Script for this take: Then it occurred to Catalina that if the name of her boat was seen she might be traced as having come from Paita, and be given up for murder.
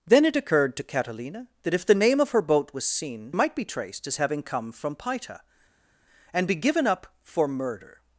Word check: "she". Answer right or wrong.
wrong